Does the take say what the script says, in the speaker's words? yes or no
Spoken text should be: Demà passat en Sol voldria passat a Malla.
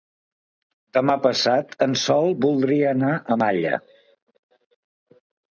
no